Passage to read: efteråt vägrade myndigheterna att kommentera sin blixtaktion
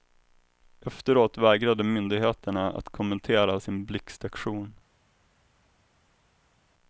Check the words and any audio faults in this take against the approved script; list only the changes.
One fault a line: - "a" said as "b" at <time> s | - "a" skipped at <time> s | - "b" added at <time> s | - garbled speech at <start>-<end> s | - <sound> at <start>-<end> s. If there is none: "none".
none